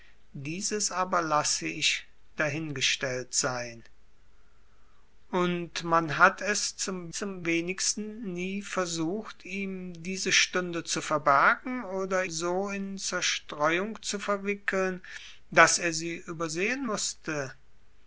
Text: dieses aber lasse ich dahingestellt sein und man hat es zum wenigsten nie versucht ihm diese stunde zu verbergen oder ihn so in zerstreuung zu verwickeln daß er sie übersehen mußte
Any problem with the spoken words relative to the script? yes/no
yes